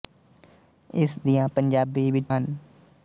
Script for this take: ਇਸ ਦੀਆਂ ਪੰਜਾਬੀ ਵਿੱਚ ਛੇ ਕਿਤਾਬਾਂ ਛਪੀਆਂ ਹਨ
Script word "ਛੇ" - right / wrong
wrong